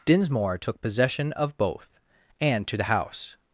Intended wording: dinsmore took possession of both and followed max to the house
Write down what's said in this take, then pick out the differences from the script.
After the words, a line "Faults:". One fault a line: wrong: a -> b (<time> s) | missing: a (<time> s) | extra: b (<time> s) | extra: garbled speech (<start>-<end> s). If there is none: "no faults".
dinsmore took possession of both and to the house
Faults:
missing: followed max (2.7 s)